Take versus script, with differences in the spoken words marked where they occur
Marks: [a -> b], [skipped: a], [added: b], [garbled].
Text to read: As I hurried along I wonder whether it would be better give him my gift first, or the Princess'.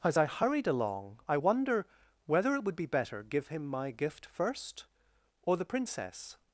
As I hurried along I wonder whether it would be better give him my gift first, or the Princess'.